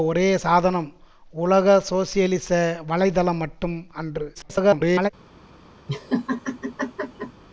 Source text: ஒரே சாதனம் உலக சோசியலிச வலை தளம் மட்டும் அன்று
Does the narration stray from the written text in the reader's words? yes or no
yes